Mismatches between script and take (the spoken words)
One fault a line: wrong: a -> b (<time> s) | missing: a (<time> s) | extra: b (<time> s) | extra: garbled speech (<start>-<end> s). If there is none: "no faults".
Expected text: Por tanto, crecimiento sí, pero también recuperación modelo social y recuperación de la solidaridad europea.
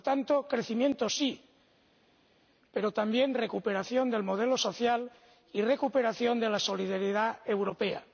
extra: del (4.1 s)